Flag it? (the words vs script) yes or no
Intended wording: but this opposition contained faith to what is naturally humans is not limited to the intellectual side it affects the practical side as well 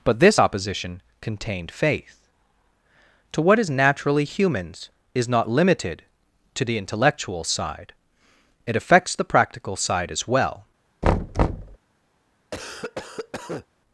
no